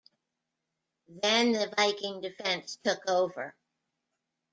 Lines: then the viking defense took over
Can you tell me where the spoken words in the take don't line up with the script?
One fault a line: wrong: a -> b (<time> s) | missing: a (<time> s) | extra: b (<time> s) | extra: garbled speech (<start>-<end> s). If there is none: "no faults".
no faults